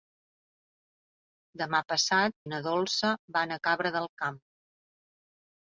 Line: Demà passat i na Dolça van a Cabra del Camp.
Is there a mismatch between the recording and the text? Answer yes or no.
no